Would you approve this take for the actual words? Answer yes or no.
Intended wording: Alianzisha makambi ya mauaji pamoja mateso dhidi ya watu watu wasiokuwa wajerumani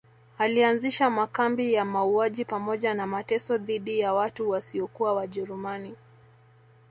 no